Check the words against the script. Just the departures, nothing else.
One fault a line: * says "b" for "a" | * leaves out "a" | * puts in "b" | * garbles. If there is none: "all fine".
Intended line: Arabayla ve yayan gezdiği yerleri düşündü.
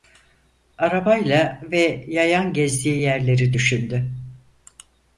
all fine